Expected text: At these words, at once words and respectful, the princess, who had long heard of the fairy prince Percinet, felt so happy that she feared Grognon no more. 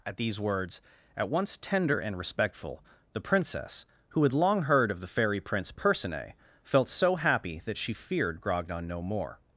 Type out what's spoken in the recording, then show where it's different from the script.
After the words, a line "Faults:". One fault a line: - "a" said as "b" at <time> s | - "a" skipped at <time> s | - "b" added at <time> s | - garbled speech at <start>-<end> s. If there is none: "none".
At these words, at once tender and respectful, the princess, who had long heard of the fairy prince Percinet, felt so happy that she feared Grognon no more.
Faults:
- "words" said as "tender" at 1.6 s